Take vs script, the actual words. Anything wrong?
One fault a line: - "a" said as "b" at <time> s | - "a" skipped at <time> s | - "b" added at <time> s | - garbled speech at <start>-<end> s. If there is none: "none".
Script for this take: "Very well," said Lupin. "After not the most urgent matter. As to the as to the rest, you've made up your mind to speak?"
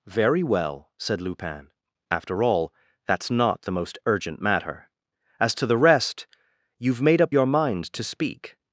- "all that's" added at 2.4 s
- "as to the" skipped at 5.8 s